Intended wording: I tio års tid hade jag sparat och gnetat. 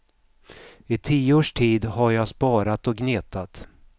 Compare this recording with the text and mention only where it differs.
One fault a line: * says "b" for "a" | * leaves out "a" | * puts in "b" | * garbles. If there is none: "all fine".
* says "har" for "hade"